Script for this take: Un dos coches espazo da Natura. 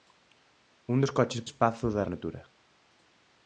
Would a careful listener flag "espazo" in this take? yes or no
no